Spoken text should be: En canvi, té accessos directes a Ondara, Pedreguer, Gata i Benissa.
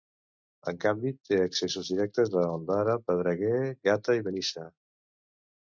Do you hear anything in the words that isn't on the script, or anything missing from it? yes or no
no